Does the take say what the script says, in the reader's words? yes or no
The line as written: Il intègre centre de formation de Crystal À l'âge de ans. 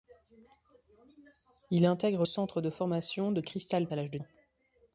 yes